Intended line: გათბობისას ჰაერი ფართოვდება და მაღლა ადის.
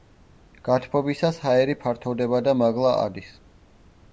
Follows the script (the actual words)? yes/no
yes